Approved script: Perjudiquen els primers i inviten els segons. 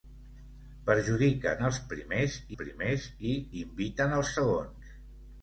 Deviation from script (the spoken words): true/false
true